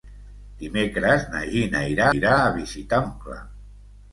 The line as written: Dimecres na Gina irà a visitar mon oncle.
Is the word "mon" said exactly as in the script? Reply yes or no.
no